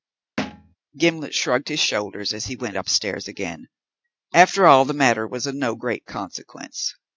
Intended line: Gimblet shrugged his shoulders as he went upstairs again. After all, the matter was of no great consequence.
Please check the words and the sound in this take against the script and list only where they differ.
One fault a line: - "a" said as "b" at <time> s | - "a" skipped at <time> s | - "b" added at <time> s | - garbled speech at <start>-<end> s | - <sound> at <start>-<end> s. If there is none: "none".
- thud at 0.4-0.8 s